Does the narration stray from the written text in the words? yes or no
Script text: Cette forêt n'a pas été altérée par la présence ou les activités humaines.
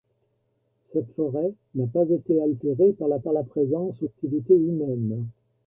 yes